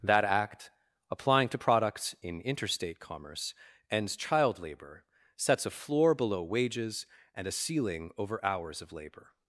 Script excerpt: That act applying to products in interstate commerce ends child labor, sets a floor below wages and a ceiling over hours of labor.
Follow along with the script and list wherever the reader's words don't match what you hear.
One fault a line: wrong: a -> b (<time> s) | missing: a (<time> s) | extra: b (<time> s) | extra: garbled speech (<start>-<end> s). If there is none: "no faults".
no faults